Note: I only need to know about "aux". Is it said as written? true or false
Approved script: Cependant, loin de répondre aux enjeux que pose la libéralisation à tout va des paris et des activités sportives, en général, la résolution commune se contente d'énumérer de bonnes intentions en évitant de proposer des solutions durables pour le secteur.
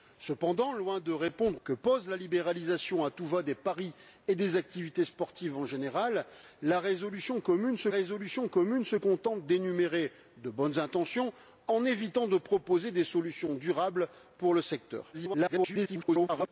false